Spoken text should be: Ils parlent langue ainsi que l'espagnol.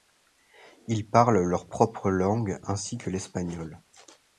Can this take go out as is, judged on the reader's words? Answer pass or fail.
fail